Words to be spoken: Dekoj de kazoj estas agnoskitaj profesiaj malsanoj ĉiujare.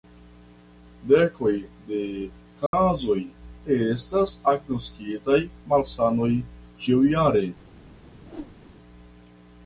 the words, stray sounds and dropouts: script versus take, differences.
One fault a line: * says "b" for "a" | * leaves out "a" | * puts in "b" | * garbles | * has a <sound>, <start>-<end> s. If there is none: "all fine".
* has a dropout, 2.7-2.7 s
* leaves out "profesiaj"
* has a whoosh, 8.2-8.6 s